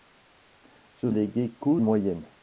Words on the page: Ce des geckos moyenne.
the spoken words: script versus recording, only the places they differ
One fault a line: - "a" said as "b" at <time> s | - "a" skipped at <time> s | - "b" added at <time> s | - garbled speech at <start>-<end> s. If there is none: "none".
none